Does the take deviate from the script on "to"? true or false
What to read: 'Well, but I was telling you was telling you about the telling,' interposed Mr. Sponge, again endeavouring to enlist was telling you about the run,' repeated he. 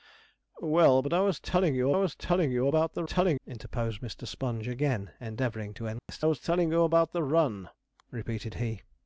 false